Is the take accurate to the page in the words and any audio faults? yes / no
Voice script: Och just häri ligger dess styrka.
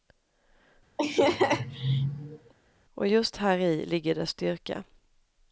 no